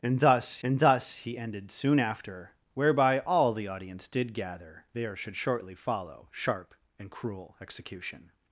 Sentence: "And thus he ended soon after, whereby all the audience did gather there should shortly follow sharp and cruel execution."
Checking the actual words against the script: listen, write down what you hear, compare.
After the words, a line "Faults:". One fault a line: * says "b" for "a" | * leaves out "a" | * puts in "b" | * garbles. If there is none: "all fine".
"And thus and thus he ended soon after, whereby all the audience did gather there should shortly follow sharp and cruel execution."
Faults:
* puts in "and thus"